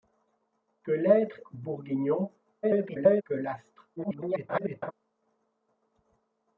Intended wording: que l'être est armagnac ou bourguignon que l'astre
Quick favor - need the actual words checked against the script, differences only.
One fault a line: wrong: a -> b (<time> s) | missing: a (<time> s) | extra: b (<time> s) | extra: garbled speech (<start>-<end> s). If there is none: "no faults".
missing: est armagnac (1.4 s)
extra: garbled speech (2.6-3.2 s)
extra: garbled speech (4.0-4.9 s)